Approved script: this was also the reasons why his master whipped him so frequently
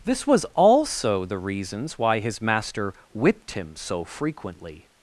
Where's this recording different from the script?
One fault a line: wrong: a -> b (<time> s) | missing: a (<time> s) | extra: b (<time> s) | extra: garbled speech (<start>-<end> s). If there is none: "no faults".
no faults